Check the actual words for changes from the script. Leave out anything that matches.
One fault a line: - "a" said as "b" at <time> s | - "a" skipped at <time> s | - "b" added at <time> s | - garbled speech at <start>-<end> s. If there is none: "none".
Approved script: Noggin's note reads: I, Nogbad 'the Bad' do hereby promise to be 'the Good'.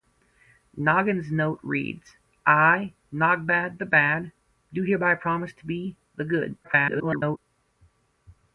- garbled speech at 6.6-7.4 s